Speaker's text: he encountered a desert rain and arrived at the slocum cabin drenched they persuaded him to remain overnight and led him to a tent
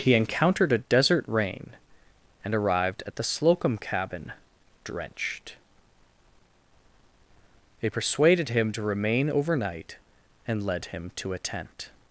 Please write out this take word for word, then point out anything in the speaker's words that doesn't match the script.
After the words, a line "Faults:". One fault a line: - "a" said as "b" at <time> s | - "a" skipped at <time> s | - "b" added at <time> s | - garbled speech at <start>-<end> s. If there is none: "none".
he encountered a desert rain and arrived at the slocum cabin drenched they persuaded him to remain overnight and led him to a tent
Faults:
none